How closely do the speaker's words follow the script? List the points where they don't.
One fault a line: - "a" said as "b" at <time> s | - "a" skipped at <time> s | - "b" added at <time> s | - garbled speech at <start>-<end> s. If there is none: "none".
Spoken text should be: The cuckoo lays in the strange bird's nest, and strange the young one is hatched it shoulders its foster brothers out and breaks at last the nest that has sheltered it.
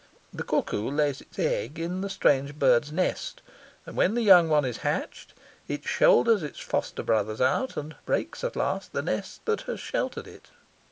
- "its egg" added at 1.2 s
- "strange" said as "when" at 4.0 s